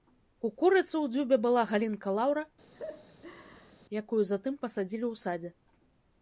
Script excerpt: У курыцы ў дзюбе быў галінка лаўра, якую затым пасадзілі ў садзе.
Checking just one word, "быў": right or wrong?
wrong